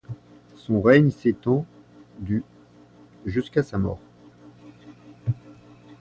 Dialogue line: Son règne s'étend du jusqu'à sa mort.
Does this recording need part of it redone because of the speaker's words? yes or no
no